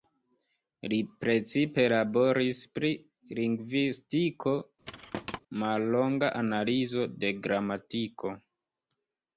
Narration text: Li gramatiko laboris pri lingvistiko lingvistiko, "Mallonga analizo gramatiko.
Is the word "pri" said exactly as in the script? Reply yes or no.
yes